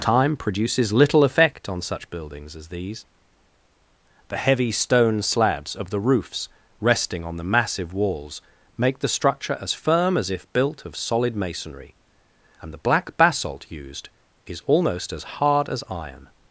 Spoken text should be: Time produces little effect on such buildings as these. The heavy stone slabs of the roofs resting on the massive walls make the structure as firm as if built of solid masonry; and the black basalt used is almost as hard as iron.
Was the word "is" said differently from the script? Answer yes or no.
no